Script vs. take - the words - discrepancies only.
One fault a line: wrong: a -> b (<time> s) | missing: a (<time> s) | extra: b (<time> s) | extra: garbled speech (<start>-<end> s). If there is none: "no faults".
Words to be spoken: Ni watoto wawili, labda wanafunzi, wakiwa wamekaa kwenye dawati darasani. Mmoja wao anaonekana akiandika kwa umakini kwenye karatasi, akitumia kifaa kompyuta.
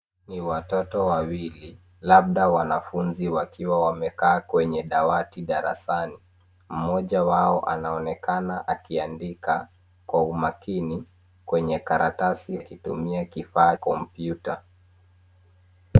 no faults